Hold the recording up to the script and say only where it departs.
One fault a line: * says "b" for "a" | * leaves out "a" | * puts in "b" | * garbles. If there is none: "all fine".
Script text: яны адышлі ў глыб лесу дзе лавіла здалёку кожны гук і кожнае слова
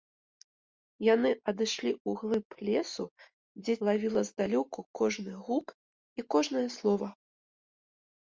all fine